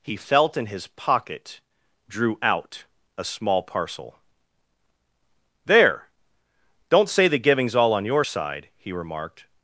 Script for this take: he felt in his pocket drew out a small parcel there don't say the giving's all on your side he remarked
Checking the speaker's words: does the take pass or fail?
pass